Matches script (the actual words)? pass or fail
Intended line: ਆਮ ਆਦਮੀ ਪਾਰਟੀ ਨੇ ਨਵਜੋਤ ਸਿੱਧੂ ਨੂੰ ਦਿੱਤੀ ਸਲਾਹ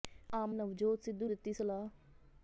fail